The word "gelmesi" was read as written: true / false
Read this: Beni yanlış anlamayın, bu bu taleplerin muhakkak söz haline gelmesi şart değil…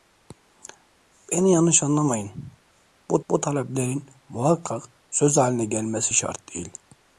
true